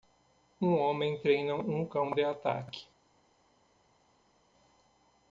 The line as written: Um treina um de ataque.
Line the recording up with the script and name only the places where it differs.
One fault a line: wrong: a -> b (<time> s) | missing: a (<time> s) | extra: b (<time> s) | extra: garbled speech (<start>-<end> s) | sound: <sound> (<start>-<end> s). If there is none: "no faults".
extra: homem (0.8 s)
extra: cão (1.8 s)